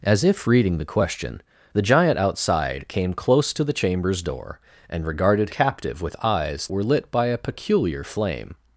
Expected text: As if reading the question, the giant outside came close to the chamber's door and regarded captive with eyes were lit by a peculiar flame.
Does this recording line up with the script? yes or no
yes